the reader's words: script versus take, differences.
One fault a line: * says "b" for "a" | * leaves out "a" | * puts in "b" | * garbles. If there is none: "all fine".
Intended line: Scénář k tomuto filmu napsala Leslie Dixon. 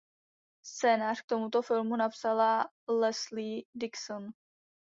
all fine